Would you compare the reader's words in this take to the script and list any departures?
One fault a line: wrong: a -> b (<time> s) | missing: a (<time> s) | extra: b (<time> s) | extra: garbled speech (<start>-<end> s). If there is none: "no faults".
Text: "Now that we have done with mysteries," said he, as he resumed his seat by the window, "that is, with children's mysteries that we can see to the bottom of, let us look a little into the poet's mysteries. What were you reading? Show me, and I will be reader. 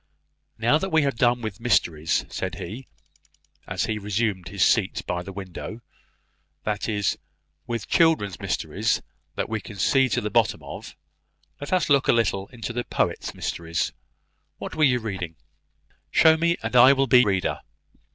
no faults